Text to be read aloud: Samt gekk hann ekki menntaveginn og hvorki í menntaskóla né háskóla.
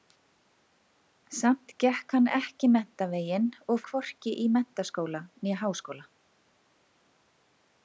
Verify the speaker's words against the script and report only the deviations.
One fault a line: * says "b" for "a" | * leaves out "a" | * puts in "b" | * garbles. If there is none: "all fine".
all fine